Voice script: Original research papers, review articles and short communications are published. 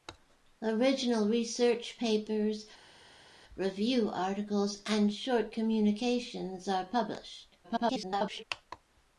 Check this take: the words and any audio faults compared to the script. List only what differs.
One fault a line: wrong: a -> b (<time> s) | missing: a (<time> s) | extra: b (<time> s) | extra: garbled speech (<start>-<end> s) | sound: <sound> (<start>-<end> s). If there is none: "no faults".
extra: garbled speech (7.6-8.4 s)